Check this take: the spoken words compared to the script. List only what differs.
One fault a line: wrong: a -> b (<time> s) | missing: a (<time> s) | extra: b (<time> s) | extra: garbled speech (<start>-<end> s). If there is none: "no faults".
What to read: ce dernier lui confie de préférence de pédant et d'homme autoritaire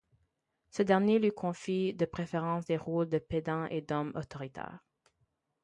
extra: des rôles (2.6 s)